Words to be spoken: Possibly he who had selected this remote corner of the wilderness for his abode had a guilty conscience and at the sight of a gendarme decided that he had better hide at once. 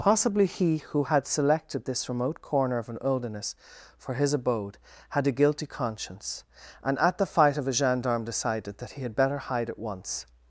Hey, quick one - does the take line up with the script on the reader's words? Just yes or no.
no